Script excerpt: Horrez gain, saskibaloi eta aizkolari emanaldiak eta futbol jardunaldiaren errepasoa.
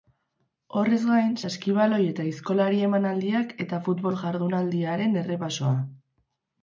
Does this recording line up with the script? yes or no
yes